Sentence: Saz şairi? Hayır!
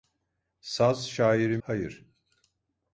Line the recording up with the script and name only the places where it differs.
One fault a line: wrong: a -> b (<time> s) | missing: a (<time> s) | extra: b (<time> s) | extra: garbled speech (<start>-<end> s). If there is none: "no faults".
no faults